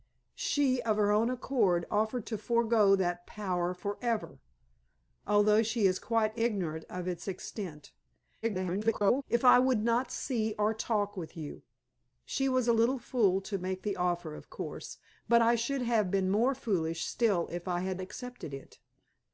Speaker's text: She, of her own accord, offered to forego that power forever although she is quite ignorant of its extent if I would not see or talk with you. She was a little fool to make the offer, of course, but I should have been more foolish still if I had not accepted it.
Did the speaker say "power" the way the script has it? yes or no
yes